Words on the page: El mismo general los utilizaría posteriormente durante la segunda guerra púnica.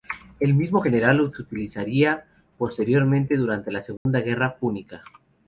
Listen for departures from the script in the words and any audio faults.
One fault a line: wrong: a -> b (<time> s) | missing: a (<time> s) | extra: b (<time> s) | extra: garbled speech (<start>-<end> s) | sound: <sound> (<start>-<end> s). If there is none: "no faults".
sound: dropout (4.0-4.1 s)